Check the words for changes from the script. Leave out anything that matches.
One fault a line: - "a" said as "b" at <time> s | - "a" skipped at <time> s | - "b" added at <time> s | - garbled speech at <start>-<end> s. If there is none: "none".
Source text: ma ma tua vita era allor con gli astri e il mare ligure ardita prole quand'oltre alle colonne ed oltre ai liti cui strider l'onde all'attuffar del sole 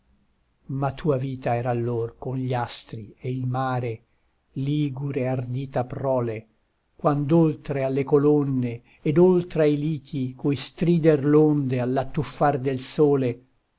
- "ma" skipped at 0.9 s